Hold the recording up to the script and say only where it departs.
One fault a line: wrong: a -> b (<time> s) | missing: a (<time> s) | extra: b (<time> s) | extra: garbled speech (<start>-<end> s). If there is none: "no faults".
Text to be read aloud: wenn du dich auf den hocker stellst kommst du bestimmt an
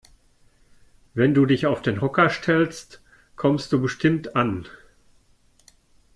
no faults